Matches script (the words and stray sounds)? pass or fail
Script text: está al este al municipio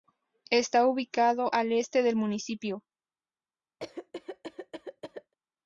fail